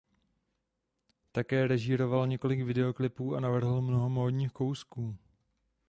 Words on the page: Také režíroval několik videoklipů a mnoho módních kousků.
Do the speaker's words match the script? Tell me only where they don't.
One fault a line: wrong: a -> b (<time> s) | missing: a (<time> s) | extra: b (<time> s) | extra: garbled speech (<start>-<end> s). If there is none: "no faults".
extra: navrhl (3.4 s)